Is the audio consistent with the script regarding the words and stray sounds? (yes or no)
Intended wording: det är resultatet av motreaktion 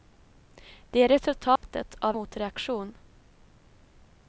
no